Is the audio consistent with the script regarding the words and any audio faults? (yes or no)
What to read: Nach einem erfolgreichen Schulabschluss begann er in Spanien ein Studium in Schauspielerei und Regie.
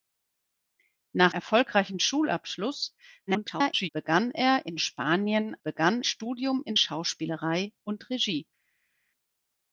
no